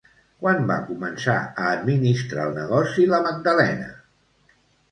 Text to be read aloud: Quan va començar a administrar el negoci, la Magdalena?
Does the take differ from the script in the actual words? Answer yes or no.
no